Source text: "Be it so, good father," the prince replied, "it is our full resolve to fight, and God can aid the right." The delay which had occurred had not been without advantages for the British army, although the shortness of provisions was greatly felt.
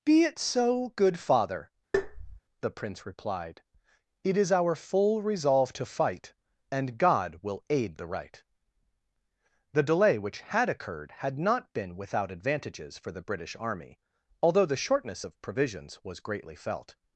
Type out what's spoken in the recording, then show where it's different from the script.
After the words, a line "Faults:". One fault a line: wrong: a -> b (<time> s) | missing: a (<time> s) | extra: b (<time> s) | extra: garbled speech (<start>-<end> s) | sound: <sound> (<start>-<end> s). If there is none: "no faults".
"Be it so, good father," the prince replied, "it is our full resolve to fight, and God will aid the right." The delay which had occurred had not been without advantages for the British army, although the shortness of provisions was greatly felt.
Faults:
sound: tap (1.9-2.4 s)
wrong: can -> will (7.4 s)